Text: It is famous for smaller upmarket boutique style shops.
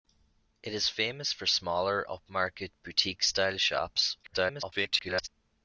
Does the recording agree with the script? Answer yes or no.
no